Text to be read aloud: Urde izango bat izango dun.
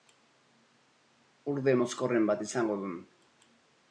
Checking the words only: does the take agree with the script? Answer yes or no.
no